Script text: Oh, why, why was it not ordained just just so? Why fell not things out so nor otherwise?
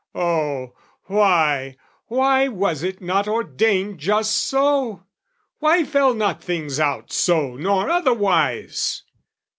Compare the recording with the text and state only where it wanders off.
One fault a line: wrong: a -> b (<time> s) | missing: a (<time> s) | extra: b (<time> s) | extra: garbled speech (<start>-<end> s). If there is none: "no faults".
missing: just (4.3 s)